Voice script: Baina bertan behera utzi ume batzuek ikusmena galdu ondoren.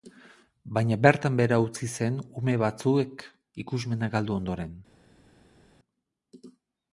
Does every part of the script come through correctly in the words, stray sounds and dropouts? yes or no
no